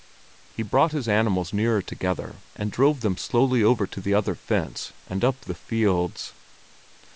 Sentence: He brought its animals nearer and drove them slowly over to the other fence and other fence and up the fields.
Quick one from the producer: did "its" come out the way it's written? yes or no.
no